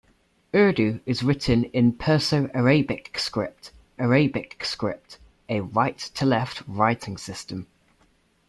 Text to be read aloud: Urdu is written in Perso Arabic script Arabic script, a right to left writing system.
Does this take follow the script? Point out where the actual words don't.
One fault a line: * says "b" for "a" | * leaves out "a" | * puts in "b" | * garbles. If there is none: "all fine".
all fine